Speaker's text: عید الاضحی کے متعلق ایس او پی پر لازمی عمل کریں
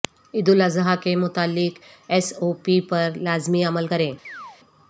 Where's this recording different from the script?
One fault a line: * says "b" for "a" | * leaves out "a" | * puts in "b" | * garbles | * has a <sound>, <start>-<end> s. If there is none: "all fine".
* has a chirp, 4.2-4.6 s